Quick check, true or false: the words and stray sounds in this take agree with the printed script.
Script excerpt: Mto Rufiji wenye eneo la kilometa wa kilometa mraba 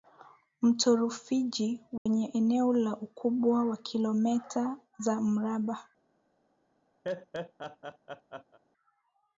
false